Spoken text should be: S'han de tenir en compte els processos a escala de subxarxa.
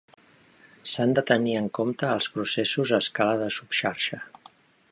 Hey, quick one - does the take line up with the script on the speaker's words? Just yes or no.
yes